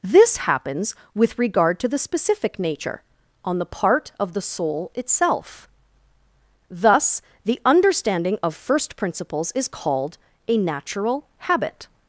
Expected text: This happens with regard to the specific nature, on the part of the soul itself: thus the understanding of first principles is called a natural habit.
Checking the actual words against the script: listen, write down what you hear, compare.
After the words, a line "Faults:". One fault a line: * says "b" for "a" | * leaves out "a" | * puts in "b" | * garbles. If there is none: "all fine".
This happens with regard to the specific nature, on the part of the soul itself: thus the understanding of first principles is called a natural habit.
Faults:
all fine